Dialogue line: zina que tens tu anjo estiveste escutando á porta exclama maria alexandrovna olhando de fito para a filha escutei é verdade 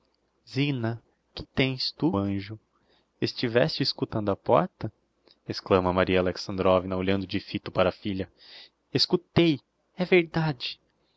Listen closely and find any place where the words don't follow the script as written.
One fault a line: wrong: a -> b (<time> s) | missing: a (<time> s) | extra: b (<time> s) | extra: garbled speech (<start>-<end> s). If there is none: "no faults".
no faults